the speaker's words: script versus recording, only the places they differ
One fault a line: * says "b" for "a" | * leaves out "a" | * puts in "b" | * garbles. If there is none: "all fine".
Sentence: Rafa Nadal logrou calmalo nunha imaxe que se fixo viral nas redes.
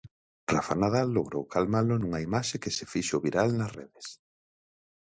all fine